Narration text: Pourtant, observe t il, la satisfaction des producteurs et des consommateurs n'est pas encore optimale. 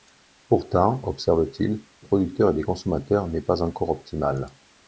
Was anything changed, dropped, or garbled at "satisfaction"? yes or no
yes